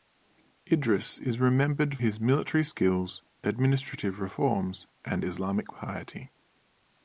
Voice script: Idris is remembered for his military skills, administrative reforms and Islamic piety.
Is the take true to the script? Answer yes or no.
no